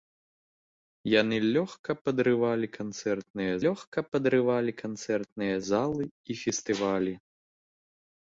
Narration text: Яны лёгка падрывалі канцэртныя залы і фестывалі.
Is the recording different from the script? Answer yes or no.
yes